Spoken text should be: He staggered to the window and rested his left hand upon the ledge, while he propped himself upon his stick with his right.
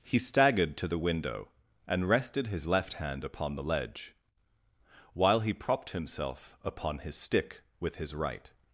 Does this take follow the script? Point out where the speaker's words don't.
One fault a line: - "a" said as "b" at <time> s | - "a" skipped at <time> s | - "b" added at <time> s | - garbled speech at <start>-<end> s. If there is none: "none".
none